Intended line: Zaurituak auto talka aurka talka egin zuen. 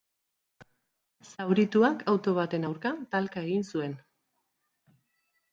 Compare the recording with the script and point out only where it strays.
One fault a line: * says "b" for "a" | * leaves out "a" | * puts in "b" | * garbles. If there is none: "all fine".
* says "baten" for "talka"